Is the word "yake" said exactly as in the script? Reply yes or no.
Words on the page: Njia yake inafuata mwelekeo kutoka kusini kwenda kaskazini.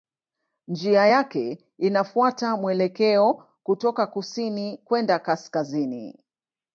yes